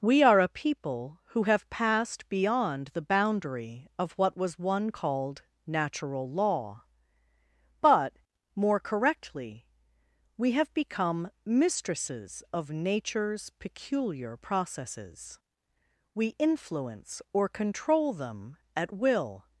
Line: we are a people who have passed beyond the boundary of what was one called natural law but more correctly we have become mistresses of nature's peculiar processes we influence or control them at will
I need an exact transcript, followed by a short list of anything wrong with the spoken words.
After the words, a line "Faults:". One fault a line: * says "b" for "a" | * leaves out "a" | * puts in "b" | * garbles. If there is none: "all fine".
we are a people who have passed beyond the boundary of what was one called natural law but more correctly we have become mistresses of nature's peculiar processes we influence or control them at will
Faults:
all fine